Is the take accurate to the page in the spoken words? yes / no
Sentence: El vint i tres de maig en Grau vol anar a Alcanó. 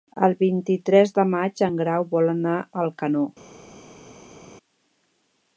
yes